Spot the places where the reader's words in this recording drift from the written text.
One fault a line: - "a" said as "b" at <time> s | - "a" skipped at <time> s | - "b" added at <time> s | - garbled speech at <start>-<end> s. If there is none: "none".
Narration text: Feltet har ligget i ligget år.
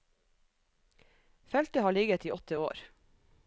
- "ligget" said as "åtte" at 2.3 s